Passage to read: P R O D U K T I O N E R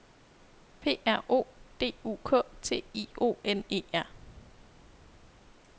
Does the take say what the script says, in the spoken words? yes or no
yes